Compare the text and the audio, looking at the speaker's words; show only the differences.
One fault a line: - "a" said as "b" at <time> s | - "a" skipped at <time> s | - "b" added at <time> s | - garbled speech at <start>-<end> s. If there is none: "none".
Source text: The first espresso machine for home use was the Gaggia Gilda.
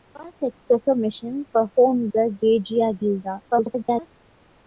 - "use was" skipped at 2.1 s
- garbled speech at 3.5-4.1 s